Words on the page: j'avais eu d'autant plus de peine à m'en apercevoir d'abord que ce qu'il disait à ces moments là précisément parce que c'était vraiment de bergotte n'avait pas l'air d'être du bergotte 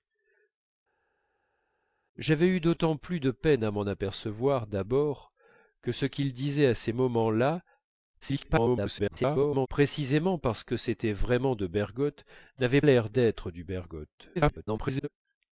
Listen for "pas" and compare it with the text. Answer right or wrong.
wrong